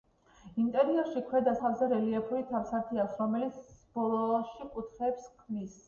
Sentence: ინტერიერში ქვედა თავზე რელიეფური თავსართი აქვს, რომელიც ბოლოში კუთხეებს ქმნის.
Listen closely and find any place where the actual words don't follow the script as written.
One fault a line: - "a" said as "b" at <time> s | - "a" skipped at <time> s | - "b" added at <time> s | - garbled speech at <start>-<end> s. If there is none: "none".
none